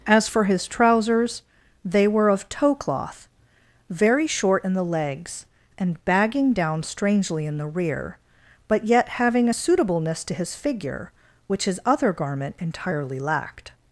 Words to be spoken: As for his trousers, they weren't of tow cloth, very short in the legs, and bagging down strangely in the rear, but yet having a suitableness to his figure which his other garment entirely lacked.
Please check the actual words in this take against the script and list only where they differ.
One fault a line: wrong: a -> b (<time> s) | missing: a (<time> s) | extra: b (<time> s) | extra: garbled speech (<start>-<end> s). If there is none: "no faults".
wrong: weren't -> were (2.1 s)